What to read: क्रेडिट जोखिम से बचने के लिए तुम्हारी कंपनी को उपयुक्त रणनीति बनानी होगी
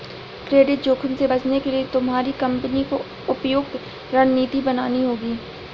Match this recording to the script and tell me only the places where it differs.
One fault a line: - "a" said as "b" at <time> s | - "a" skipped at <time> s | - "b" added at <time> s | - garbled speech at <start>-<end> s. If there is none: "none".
none